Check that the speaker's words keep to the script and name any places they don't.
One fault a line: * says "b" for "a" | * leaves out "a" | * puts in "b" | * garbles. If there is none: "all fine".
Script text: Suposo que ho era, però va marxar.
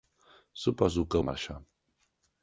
* leaves out "ho era però"